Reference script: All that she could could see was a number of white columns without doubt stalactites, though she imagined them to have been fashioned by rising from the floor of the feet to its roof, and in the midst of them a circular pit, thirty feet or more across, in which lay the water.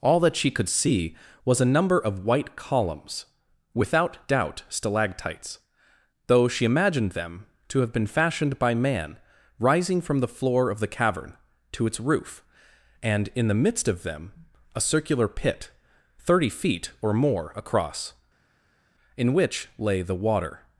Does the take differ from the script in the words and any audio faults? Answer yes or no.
yes